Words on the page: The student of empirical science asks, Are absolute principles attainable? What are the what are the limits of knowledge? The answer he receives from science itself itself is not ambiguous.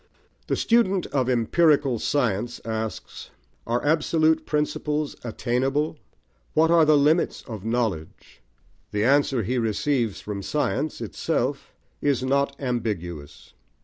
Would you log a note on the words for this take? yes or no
yes